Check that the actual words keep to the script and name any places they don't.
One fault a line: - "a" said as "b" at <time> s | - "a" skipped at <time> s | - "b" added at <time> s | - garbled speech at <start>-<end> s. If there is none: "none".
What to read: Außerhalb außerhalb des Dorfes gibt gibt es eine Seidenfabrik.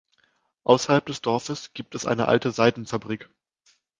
- "außerhalb" skipped at 1.1 s
- "gibt" skipped at 1.9 s
- "alte" added at 2.3 s